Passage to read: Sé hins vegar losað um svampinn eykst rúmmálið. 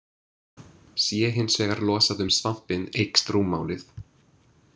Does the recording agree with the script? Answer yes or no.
yes